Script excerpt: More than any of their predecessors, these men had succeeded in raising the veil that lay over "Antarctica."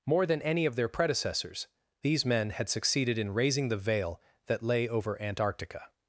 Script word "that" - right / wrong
right